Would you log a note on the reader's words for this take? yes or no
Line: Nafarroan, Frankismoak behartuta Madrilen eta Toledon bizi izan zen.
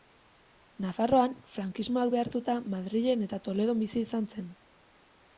no